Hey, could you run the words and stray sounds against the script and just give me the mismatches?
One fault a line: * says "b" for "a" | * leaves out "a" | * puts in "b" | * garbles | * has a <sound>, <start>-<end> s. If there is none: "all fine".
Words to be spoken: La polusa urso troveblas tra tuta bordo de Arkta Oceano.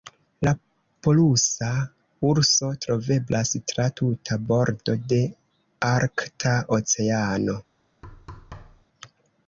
* has a thud, 8.0-8.9 s